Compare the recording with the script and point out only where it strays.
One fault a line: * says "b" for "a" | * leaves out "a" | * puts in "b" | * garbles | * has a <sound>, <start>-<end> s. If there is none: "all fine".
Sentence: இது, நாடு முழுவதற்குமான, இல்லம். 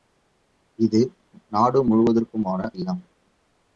all fine